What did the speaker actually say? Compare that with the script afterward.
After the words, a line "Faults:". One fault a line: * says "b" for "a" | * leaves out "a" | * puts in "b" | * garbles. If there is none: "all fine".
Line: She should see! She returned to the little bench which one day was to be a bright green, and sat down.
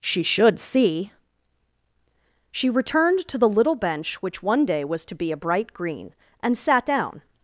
She should see! She returned to the little bench which one day was to be a bright green, and sat down.
Faults:
all fine